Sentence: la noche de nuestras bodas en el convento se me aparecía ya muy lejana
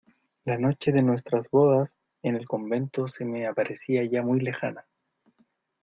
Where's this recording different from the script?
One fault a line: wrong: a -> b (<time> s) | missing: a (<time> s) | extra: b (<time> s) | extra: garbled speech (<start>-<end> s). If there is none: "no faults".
no faults